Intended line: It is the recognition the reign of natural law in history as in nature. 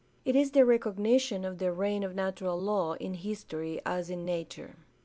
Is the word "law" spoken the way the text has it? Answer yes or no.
yes